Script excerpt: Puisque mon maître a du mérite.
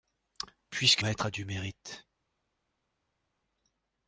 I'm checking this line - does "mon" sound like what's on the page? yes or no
no